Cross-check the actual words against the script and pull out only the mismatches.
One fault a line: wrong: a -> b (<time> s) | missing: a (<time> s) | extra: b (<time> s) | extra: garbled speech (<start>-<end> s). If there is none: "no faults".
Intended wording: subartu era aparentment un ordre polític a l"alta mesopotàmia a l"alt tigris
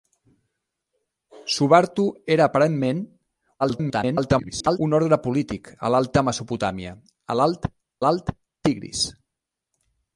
extra: garbled speech (3.6-4.8 s)
extra: l"alt (8.0 s)